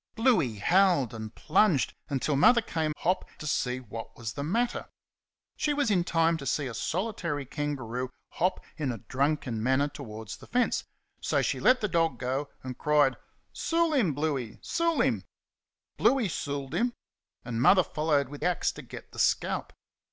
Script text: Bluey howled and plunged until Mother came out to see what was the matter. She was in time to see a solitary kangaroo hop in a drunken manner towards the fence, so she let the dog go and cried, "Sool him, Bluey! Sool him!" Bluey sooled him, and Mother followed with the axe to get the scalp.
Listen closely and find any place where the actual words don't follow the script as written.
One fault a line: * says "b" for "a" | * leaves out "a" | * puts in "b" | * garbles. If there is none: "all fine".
* says "hop" for "out"
* leaves out "the"